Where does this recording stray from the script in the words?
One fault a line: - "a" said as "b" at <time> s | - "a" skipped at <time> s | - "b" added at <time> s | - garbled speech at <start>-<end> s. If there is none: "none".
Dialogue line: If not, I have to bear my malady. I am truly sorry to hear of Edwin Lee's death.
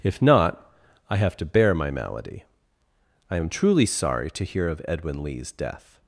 none